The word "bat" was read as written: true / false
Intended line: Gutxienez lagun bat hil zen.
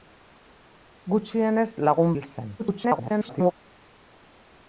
false